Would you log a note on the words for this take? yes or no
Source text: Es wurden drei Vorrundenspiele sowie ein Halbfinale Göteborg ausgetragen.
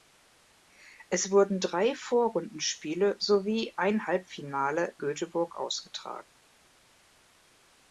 no